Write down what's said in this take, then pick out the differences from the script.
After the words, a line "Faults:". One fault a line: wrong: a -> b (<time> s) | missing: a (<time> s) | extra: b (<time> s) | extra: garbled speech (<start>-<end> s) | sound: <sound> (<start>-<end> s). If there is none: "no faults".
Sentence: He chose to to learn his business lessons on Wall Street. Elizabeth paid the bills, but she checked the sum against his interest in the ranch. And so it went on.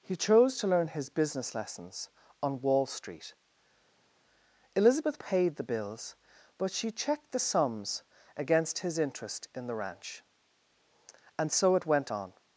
He chose to learn his business lessons on Wall Street. Elizabeth paid the bills, but she checked the sums against his interest in the ranch. And so it went on.
Faults:
missing: to (0.7 s)
wrong: sum -> sums (7.4 s)